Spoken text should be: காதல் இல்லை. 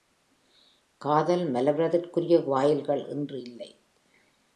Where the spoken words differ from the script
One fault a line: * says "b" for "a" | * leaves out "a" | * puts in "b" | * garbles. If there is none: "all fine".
* puts in "மலர்வதற்குரிய வாயில்கள் இன்று"